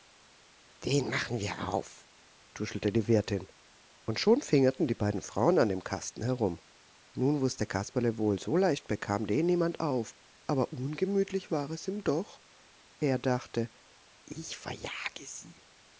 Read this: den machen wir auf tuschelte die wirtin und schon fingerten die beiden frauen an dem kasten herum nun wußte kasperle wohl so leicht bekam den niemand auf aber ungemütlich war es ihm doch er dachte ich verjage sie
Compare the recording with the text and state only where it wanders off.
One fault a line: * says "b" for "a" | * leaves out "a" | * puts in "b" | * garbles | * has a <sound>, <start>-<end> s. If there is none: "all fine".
all fine